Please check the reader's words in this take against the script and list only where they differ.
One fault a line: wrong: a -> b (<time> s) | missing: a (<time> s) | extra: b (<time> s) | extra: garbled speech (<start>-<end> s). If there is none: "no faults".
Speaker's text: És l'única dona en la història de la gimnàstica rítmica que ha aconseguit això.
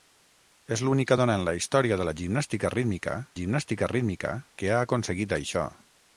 extra: gimnàstica rítmica (3.4 s)